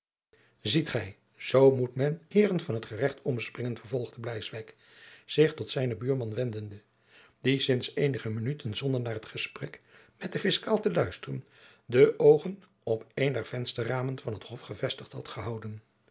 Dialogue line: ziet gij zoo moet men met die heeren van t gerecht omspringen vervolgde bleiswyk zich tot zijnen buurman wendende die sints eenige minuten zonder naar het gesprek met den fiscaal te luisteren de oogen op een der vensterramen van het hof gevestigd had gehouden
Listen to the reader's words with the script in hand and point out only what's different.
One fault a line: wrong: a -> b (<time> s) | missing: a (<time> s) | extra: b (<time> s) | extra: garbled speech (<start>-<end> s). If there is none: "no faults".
missing: met die (2.2 s)